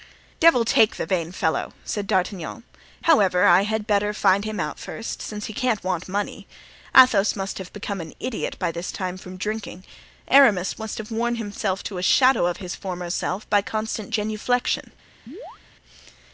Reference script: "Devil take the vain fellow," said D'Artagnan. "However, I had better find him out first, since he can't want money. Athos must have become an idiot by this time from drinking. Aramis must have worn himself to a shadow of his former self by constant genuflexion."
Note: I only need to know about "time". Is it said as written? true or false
true